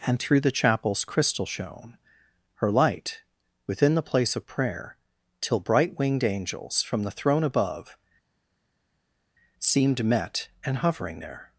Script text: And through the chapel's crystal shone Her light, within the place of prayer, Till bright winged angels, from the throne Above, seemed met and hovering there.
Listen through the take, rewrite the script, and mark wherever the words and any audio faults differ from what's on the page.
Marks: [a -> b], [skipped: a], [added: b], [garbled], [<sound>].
And through the chapel's crystal shone Her light, within the place of prayer, Till bright winged angels, from the throne Above, seemed met and hovering there.